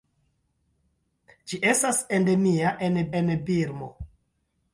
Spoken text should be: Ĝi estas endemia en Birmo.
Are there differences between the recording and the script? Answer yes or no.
yes